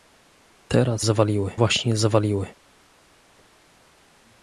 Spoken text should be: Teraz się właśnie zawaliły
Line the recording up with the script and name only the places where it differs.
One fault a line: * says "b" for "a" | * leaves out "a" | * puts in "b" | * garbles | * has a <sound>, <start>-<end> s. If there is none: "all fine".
* says "zawaliły" for "się"